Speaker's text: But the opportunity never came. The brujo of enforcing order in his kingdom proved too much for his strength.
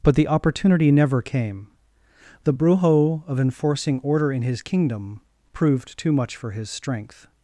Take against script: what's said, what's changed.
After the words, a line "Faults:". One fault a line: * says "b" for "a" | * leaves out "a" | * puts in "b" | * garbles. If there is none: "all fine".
But the opportunity never came. The brujo of enforcing order in his kingdom proved too much for his strength.
Faults:
all fine